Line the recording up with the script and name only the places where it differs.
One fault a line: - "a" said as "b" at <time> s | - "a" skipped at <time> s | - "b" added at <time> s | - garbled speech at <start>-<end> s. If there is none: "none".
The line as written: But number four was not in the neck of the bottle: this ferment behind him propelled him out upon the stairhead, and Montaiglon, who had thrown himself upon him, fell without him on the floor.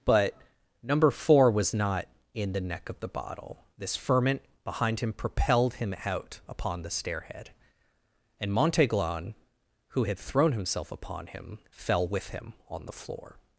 - "without" said as "with" at 12.1 s